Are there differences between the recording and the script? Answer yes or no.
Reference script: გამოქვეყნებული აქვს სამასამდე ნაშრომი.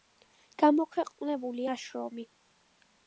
yes